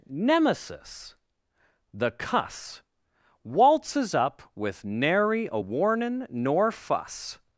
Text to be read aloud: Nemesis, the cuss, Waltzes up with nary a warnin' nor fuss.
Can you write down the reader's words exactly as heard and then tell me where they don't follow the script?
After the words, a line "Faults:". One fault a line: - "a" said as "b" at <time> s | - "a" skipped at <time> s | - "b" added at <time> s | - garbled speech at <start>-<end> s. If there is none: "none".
Nemesis, the cuss, Waltzes up with nary a warnin' nor fuss.
Faults:
none